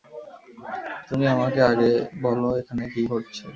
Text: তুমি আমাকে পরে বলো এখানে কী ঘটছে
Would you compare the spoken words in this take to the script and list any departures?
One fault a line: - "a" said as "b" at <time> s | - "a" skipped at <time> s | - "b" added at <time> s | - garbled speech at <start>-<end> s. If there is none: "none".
- "পরে" said as "আগে" at 1.7 s